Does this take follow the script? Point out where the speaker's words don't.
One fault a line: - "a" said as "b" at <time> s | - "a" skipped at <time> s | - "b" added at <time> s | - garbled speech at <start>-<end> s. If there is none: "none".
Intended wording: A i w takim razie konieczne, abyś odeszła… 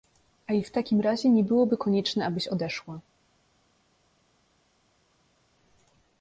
- "nie byłoby" added at 1.3 s